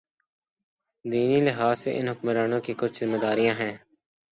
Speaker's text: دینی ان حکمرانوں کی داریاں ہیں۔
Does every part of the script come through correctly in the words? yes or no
no